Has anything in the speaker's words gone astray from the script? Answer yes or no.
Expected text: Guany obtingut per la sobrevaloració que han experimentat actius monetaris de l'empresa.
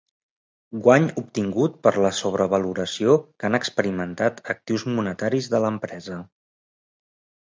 no